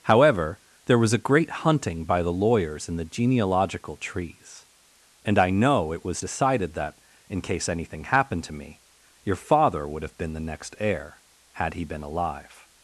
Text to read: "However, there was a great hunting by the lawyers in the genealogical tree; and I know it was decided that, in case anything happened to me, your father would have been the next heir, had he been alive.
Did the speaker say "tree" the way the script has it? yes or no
no